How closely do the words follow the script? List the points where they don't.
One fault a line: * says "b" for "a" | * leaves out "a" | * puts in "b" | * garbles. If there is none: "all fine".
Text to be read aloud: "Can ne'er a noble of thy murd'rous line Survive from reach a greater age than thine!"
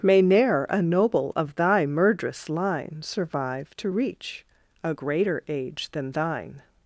* says "May" for "Can"
* says "to" for "from"